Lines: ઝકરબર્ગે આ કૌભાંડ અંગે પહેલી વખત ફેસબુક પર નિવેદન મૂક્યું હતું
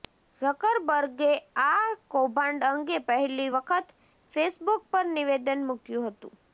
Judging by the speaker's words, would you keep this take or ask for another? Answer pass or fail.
pass